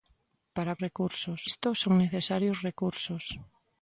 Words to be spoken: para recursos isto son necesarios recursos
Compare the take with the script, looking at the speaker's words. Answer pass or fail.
pass